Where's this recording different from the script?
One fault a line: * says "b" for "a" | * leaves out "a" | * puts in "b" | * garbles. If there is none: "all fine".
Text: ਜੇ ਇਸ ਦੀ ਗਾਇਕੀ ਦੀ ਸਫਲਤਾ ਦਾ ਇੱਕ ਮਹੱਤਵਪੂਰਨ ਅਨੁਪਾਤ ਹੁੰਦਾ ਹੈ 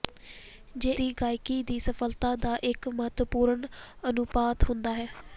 * leaves out "ਇਸ"